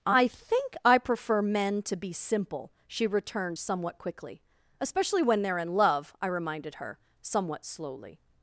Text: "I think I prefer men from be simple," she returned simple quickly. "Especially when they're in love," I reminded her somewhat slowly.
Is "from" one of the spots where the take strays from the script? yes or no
yes